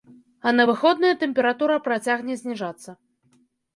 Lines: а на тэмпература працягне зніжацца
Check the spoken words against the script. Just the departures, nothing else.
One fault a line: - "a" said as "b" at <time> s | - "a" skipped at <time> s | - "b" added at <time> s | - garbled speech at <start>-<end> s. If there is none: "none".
- "выходныя" added at 0.7 s